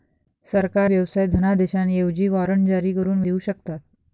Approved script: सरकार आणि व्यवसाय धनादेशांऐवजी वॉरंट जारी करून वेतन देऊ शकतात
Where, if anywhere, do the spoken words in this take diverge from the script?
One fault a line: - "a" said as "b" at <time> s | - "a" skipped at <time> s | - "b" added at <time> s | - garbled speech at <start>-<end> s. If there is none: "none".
- "आणि" skipped at 0.9 s
- "वेतन" skipped at 3.2 s